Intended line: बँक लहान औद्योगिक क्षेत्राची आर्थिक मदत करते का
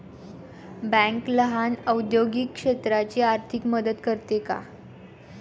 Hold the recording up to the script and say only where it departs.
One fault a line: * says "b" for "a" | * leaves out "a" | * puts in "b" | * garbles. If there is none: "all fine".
all fine